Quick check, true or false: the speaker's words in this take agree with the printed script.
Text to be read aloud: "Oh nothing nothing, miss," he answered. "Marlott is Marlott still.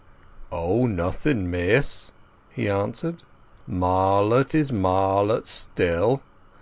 false